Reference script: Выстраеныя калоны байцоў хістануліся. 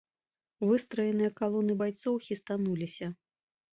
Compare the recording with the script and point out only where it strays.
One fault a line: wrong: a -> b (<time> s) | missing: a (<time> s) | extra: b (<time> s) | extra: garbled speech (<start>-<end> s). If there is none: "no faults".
no faults